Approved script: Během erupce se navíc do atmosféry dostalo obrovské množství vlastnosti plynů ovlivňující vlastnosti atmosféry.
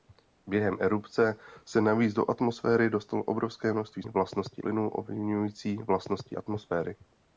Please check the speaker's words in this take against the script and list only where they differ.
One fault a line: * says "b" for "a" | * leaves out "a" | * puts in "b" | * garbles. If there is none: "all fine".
all fine